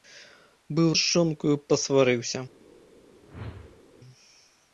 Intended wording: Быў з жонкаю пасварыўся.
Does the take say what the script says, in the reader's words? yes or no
yes